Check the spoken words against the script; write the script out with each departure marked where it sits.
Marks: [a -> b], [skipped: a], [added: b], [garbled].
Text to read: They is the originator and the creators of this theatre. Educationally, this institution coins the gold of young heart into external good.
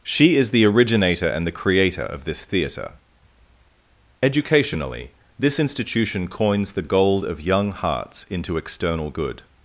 [They -> She] is the originator and the [creators -> creator] of this theatre. Educationally, this institution coins the gold of young [heart -> hearts] into external good.